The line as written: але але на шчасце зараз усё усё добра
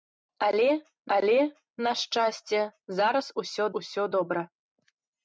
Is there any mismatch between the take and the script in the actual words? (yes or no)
no